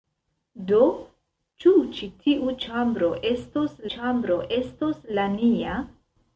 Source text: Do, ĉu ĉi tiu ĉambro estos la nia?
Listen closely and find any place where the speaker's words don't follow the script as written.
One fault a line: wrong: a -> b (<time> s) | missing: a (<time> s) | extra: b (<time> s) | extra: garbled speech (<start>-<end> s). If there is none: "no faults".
extra: ĉambro estos (3.9 s)